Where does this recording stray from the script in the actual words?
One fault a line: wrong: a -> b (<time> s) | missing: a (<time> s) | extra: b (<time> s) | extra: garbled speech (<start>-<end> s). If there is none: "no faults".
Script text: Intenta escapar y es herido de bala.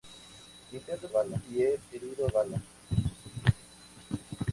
wrong: escapar -> bala (1.1 s)
missing: de (2.3 s)